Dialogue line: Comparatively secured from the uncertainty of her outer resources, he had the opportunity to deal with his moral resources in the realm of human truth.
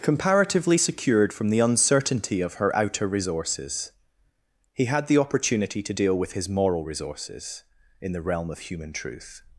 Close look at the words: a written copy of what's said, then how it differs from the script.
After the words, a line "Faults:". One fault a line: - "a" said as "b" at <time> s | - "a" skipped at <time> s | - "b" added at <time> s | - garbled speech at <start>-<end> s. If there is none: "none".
Comparatively secured from the uncertainty of her outer resources, he had the opportunity to deal with his moral resources in the realm of human truth.
Faults:
none